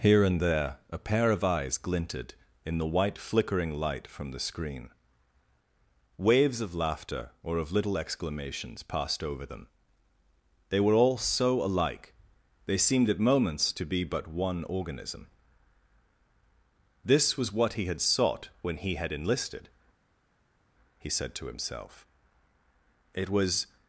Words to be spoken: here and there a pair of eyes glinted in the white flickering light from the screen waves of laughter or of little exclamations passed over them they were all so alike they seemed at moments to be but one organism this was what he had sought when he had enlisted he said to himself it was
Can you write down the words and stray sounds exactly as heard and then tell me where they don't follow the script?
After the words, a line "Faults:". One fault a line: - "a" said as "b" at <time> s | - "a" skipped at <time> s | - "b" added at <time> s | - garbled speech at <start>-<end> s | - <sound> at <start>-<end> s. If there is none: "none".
here and there a pair of eyes glinted in the white flickering light from the screen waves of laughter or of little exclamations passed over them they were all so alike they seemed at moments to be but one organism this was what he had sought when he had enlisted he said to himself it was
Faults:
none